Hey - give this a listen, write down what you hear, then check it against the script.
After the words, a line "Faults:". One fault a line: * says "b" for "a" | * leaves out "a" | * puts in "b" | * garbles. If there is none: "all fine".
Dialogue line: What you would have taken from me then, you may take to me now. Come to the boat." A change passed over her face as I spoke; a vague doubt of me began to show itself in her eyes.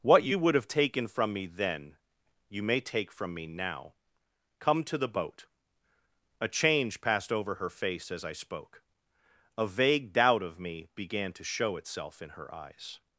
What you would have taken from me then, you may take from me now. Come to the boat." A change passed over her face as I spoke; a vague doubt of me began to show itself in her eyes.
Faults:
* says "from" for "to"